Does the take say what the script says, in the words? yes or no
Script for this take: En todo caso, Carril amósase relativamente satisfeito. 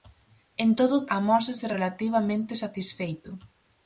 no